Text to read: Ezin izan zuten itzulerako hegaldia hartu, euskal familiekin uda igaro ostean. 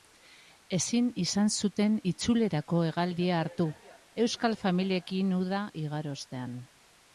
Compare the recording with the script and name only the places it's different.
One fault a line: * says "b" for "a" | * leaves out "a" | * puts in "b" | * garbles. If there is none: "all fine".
all fine